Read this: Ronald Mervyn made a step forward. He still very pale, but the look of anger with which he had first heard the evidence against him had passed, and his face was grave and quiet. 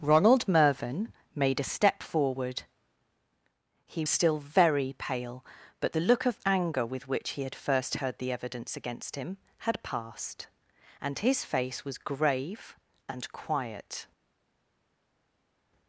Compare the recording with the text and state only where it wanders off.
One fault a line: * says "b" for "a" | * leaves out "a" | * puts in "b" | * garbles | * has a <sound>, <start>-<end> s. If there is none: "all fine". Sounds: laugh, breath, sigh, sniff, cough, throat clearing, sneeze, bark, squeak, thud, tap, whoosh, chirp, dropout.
all fine